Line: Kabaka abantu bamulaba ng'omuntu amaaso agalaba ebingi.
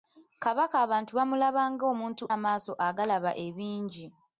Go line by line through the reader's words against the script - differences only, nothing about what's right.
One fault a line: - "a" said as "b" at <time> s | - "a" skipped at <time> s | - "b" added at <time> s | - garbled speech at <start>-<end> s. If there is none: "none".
none